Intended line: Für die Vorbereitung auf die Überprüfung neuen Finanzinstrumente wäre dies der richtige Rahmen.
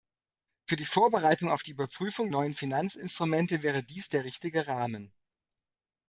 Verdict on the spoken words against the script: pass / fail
pass